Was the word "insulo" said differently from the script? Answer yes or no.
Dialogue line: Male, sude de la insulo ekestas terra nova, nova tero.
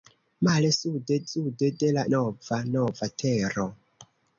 yes